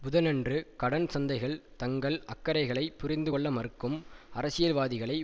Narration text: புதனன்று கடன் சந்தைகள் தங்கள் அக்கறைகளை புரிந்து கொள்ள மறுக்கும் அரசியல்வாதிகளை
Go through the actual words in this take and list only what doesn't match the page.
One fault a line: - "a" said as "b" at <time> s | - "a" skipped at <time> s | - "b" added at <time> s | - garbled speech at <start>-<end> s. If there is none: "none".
none